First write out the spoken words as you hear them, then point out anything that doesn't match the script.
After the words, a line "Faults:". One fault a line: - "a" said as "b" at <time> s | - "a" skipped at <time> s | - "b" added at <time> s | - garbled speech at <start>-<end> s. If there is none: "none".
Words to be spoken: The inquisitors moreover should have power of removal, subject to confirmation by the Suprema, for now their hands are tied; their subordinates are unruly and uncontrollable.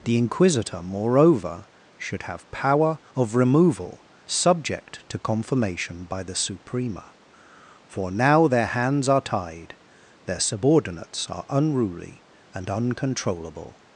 The inquisitor moreover should have power of removal, subject to confirmation by the Suprema, for now their hands are tied; their subordinates are unruly and uncontrollable.
Faults:
- "inquisitors" said as "inquisitor" at 0.2 s